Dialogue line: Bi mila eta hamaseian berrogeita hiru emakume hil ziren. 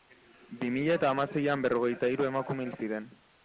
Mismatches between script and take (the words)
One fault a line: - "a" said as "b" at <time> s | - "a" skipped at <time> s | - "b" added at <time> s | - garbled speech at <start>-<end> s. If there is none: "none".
none